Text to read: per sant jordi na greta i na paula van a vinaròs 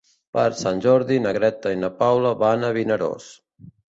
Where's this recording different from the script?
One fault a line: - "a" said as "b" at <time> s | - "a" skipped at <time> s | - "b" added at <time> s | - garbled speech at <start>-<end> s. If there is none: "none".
none